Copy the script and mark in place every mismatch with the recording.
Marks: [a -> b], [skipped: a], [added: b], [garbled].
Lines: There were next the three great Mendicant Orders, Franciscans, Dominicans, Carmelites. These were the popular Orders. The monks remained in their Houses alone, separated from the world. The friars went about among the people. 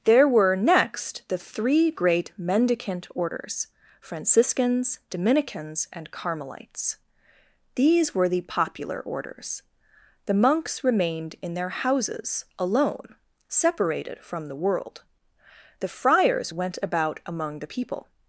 There were next the three great Mendicant Orders, Franciscans, Dominicans, [added: and] Carmelites. These were the popular Orders. The monks remained in their Houses alone, separated from the world. The friars went about among the people.